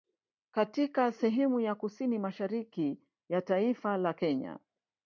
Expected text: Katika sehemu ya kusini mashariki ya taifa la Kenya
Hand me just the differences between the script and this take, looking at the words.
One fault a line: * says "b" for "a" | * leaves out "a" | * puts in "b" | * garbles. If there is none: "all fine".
all fine